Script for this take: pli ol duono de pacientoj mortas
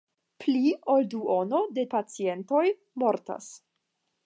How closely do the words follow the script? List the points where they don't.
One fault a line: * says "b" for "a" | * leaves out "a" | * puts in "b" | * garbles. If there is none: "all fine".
all fine